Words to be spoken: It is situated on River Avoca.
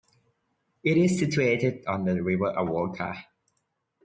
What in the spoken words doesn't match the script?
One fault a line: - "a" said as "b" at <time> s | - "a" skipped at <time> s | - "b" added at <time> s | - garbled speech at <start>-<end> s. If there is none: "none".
- "the" added at 2.0 s